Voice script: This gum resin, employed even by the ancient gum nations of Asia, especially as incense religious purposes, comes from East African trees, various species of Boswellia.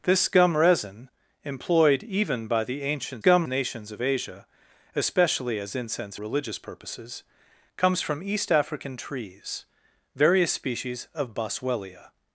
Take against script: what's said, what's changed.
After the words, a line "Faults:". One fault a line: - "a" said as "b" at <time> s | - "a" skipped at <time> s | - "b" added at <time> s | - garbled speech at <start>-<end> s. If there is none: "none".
This gum resin, employed even by the ancient gum nations of Asia, especially as incense religious purposes, comes from East African trees, various species of Boswellia.
Faults:
none